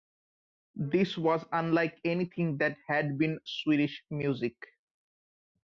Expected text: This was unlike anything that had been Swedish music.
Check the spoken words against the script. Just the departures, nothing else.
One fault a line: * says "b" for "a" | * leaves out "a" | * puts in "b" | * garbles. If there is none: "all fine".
all fine